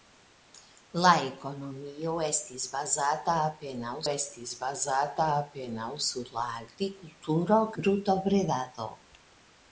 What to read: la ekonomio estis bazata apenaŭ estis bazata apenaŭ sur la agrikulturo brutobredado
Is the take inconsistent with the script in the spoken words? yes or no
no